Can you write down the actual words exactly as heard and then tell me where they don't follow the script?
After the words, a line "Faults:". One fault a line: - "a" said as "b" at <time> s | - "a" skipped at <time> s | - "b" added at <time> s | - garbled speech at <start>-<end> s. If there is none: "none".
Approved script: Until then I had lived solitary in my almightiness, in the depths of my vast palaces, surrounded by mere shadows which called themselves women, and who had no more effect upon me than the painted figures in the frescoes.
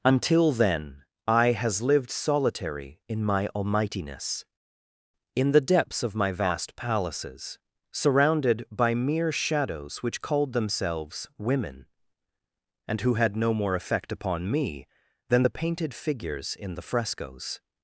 Until then I has lived solitary in my almightiness, in the depths of my vast palaces, surrounded by mere shadows which called themselves women, and who had no more effect upon me than the painted figures in the frescoes.
Faults:
- "had" said as "has" at 1.5 s